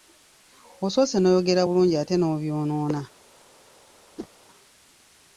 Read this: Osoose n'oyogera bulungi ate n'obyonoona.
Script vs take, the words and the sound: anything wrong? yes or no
yes